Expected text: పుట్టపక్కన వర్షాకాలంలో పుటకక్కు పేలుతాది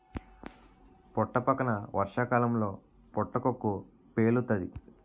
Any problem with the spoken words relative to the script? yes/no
no